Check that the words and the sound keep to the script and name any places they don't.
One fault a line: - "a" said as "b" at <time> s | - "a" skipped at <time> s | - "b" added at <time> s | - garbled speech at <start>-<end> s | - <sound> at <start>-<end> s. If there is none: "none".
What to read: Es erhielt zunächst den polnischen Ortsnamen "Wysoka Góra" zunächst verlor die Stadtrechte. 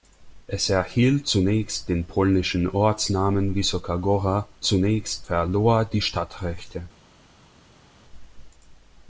none